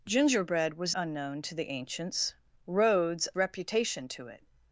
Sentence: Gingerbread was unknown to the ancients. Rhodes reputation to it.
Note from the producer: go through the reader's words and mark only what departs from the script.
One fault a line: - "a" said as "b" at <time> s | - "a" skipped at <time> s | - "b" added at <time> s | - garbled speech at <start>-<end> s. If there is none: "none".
none